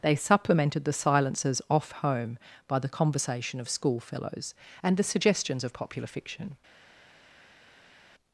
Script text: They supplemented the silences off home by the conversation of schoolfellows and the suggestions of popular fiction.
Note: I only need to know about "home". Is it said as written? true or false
true